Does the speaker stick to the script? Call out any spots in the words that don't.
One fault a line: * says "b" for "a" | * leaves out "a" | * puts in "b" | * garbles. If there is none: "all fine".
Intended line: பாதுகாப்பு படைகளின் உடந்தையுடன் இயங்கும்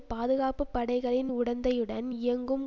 all fine